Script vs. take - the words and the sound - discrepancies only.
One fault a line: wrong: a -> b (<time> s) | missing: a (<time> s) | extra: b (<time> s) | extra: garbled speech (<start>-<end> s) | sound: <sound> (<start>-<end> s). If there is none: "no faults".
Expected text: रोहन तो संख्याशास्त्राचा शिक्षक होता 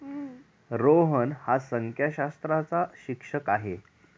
wrong: तो -> हा (1.4 s)
wrong: होता -> आहे (3.5 s)